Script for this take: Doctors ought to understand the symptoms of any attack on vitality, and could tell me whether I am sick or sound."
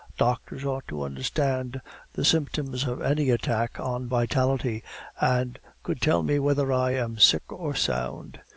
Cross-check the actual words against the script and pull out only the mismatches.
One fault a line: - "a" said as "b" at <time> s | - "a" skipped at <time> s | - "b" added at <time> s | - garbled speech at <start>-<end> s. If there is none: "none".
none